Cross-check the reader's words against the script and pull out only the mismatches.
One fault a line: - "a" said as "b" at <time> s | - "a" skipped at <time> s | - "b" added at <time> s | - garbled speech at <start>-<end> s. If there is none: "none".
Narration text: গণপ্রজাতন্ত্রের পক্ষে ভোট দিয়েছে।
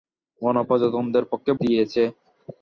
- "ভোট" skipped at 1.5 s